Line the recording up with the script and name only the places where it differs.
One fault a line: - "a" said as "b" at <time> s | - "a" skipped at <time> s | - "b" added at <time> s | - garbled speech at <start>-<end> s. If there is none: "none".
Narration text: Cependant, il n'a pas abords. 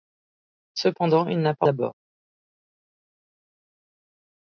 none